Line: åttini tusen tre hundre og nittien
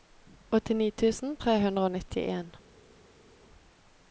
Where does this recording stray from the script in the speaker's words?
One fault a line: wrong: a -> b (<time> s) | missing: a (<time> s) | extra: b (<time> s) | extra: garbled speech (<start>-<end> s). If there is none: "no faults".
no faults